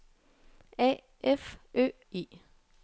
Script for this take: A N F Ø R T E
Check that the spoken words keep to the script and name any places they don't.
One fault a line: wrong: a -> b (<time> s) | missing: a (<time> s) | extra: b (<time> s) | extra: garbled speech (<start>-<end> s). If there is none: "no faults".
missing: N (1.0 s)
missing: R T (1.9 s)